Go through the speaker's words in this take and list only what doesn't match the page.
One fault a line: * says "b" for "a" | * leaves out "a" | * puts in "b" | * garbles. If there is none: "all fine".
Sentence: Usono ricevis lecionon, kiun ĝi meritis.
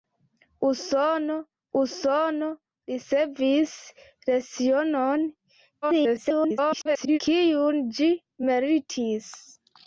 * puts in "usono"
* garbles